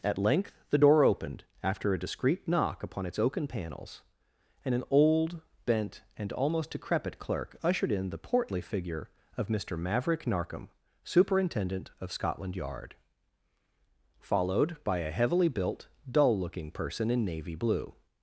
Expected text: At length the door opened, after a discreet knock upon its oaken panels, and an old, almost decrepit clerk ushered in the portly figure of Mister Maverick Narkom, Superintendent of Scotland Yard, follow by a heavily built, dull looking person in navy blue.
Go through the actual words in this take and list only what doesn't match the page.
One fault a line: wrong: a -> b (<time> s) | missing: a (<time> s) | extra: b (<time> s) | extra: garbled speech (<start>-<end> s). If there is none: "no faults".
extra: bent and (5.6 s)
wrong: follow -> followed (14.2 s)